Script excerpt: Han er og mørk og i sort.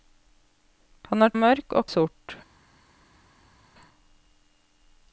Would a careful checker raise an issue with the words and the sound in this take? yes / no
no